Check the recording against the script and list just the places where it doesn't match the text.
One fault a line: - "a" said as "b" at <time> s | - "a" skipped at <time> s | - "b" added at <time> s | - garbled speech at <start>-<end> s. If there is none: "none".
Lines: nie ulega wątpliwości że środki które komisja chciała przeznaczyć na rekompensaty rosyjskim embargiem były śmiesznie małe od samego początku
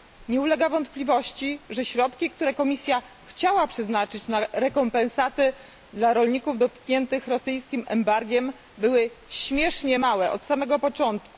- "dla rolników dotkniętych" added at 5.9 s